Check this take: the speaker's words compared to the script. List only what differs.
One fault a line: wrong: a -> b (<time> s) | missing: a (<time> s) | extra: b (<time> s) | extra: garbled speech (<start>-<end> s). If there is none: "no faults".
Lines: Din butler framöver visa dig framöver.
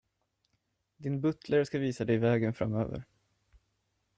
wrong: framöver -> ska (1.6 s)
extra: vägen (2.2 s)